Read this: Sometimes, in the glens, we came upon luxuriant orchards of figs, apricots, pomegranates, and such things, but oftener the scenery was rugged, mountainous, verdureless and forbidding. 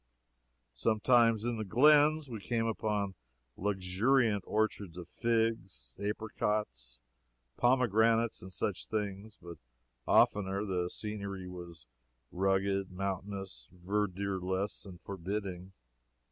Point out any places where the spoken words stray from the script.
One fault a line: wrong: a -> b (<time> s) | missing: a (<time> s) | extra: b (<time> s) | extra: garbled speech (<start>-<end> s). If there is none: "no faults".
no faults